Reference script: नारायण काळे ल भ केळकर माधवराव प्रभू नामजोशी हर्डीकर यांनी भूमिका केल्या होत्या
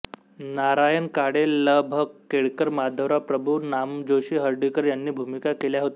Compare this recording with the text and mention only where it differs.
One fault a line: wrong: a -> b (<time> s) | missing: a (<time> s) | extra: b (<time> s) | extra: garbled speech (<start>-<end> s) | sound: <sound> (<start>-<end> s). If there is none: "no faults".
no faults